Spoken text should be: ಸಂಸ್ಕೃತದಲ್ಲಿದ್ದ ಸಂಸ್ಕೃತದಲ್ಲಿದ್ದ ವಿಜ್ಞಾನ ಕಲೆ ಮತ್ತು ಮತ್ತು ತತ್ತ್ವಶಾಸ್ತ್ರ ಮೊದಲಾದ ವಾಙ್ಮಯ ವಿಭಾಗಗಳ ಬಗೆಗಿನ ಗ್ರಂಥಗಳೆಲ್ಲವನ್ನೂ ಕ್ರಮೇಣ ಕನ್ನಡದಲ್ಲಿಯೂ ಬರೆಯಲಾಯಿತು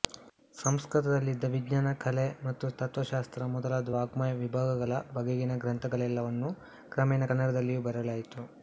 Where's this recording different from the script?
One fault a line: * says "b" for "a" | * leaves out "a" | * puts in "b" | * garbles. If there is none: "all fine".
* leaves out "ಸಂಸ್ಕೃತದಲ್ಲಿದ್ದ"
* leaves out "ಮತ್ತು"